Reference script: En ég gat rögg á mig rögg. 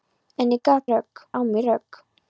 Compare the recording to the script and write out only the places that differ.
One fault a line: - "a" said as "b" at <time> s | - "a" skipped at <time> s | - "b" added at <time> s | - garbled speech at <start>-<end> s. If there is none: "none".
none